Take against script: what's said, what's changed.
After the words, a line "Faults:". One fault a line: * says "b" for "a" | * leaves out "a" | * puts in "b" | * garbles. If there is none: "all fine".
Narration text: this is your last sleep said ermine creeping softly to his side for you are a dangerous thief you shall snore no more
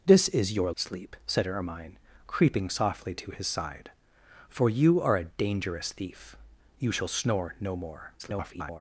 this is your sleep said ermine creeping softly to his side for you are a dangerous thief you shall snore no more [garbled]
Faults:
* leaves out "last"
* garbles